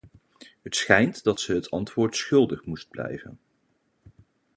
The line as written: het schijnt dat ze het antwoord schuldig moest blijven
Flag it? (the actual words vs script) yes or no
no